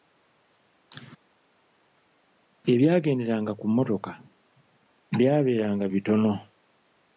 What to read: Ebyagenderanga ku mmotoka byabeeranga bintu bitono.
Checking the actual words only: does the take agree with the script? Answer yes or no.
no